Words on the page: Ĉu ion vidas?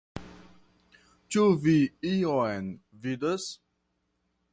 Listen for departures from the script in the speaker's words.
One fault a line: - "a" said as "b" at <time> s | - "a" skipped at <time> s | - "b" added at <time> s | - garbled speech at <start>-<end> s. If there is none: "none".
- "vi" added at 1.6 s